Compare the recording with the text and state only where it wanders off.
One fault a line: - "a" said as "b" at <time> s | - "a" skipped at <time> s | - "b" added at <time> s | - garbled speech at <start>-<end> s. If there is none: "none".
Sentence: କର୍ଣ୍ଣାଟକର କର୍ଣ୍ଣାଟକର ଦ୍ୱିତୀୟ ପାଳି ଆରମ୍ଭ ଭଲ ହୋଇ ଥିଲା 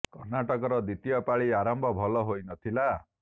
- "କର୍ଣ୍ଣାଟକର" skipped at 0.8 s
- "ନ" added at 2.4 s